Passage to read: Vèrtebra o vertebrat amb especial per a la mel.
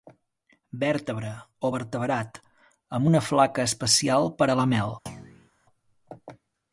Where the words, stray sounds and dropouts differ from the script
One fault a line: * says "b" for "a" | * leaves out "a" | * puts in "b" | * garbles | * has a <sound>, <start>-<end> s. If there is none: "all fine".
* puts in "una flaca"
* has a thud, 5.1-5.5 s